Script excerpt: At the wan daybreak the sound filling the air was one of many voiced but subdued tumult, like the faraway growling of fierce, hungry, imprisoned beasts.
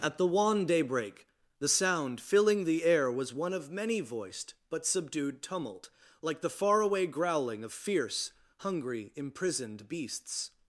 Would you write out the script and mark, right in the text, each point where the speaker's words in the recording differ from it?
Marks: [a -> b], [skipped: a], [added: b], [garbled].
At the wan daybreak the sound filling the air was one of many voiced but subdued tumult, like the faraway growling of fierce, hungry, imprisoned beasts.